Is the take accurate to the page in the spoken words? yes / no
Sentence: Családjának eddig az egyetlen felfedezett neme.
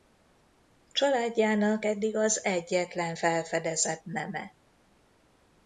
yes